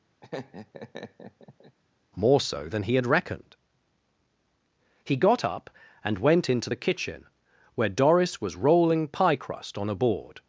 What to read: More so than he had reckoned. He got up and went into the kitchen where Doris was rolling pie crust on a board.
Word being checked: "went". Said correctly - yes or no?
yes